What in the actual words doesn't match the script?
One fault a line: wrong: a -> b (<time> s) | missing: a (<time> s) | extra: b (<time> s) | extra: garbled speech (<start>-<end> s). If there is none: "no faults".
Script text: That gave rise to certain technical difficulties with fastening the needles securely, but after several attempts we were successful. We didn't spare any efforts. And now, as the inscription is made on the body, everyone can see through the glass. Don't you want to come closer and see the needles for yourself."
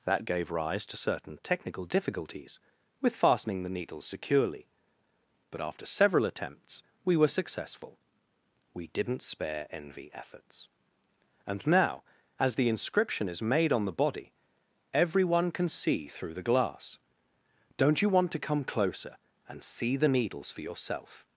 wrong: any -> envy (9.7 s)